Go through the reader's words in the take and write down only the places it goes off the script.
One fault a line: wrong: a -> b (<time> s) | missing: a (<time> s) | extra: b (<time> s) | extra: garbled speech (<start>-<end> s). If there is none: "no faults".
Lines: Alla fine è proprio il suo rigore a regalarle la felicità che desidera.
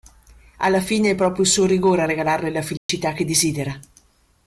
no faults